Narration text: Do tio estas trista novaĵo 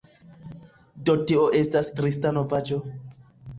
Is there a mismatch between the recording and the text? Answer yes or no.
no